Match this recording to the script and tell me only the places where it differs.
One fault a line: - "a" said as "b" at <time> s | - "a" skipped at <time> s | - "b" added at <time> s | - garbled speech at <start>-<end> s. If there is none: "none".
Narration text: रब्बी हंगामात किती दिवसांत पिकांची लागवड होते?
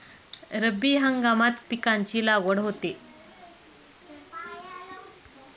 - "किती दिवसांत" skipped at 1.6 s